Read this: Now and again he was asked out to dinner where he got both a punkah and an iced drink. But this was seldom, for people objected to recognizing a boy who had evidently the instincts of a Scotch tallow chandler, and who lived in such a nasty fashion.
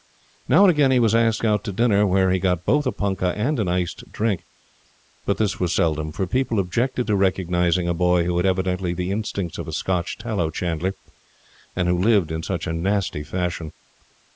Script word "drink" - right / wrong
right